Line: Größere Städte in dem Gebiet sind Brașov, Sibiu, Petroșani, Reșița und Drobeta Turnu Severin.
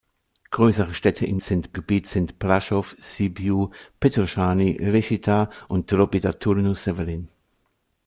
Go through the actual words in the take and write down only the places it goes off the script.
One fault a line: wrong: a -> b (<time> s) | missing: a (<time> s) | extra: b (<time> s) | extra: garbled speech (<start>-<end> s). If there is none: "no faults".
wrong: dem -> sind (1.4 s)